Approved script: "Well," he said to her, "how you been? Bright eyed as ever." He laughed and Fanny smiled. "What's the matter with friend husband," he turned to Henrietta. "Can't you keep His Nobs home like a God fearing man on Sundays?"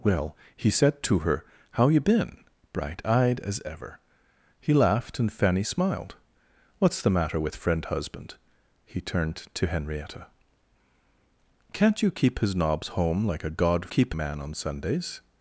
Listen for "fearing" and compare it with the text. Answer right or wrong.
wrong